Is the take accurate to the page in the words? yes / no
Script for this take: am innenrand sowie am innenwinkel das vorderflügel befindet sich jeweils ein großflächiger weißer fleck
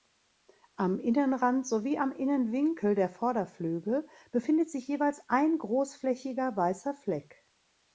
no